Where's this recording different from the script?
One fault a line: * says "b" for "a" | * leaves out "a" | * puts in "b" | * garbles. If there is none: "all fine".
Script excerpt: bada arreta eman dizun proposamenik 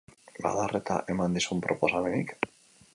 all fine